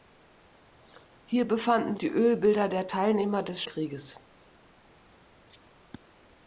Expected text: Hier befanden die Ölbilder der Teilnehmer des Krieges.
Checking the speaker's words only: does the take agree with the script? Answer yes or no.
yes